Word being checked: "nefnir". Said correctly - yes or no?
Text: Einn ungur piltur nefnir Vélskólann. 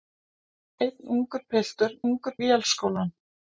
no